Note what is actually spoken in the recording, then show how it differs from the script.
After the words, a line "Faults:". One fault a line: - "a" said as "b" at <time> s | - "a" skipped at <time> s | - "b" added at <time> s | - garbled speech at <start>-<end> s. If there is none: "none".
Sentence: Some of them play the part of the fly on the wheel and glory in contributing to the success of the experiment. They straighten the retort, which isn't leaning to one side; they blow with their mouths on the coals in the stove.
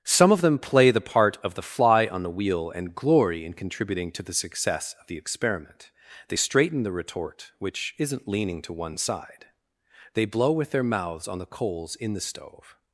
Some of them play the part of the fly on the wheel and glory in contributing to the success of the experiment. They straighten the retort, which isn't leaning to one side; they blow with their mouths on the coals in the stove.
Faults:
none